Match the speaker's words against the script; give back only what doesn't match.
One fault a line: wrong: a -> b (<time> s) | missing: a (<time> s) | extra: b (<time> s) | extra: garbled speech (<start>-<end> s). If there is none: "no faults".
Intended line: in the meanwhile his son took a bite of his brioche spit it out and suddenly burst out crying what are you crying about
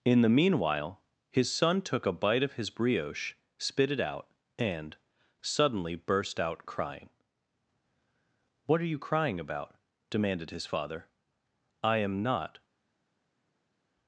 extra: demanded his father i am not (10.1 s)